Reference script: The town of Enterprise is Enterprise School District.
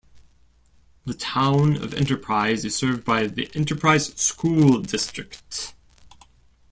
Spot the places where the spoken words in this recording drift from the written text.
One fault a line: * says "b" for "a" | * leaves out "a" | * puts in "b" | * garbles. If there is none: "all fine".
* puts in "served by the"